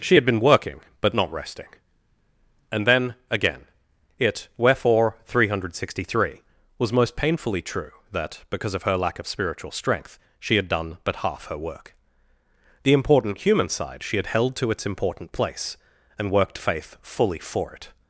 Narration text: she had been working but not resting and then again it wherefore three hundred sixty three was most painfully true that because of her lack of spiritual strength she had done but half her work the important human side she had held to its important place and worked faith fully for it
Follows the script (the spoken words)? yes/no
yes